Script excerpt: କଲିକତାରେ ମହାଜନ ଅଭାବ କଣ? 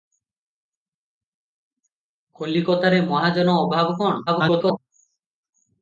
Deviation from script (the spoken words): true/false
true